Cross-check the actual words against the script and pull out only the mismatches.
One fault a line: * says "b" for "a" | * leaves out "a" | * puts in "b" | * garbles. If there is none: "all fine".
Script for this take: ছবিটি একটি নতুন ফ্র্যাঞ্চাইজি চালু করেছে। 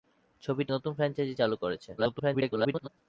* leaves out "একটি"
* garbles